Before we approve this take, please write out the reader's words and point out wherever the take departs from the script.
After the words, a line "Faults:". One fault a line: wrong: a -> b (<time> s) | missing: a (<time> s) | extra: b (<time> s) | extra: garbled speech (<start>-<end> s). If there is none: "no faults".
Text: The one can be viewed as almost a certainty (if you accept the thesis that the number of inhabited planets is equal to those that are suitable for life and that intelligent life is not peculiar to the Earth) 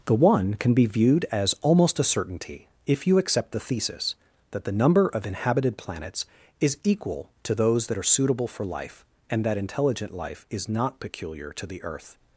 The one can be viewed as almost a certainty (if you accept the thesis that the number of inhabited planets is equal to those that are suitable for life and that intelligent life is not peculiar to the Earth)
Faults:
no faults